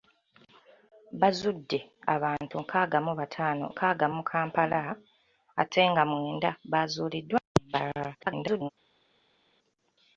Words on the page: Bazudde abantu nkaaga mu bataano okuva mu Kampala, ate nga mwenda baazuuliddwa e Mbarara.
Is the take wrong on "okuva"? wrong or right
wrong